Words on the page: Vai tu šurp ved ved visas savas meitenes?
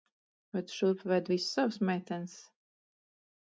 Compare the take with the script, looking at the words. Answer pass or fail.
fail